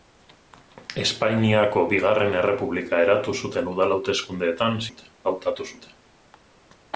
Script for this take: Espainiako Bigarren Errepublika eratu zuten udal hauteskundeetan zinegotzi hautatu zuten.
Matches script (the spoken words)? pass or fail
fail